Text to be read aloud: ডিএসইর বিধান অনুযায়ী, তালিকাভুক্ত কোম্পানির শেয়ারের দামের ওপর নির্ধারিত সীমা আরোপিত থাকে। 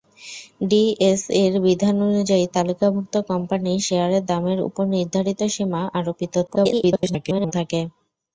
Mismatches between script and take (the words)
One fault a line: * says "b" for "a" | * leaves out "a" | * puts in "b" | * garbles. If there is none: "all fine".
* garbles